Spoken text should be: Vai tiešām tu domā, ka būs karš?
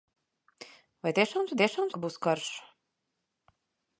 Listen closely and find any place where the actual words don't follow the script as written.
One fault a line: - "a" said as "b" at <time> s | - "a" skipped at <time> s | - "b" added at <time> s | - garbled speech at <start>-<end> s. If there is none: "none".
- "domā" said as "tiešām" at 1.6 s